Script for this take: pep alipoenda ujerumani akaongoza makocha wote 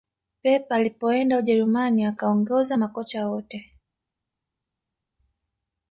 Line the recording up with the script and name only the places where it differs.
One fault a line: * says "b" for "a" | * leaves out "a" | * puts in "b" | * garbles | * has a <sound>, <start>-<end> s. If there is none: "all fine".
all fine